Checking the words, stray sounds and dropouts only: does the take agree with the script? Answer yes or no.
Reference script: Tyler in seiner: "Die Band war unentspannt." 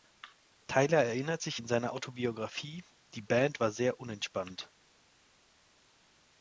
no